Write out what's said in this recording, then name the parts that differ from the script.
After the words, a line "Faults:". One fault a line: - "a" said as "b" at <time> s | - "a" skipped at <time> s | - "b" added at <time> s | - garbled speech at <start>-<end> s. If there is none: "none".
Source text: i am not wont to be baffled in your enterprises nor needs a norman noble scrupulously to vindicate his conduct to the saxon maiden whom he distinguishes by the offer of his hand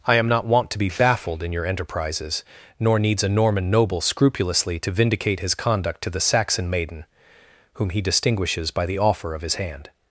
i am not wont to be baffled in your enterprises nor needs a norman noble scrupulously to vindicate his conduct to the saxon maiden whom he distinguishes by the offer of his hand
Faults:
none